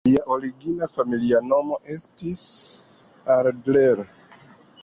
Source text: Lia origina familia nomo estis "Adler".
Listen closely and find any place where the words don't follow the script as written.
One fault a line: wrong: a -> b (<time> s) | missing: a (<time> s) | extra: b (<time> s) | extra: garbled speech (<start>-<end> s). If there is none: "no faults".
no faults